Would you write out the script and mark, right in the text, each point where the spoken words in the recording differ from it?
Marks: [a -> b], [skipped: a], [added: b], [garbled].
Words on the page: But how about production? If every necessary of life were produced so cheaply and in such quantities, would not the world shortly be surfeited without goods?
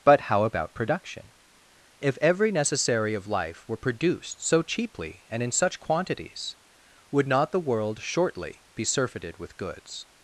But how about production? If every necessary of life were produced so cheaply and in such quantities, would not the world shortly be surfeited [without -> with] goods?